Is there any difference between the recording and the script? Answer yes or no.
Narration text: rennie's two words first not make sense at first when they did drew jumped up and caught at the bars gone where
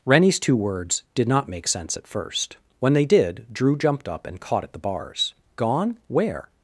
yes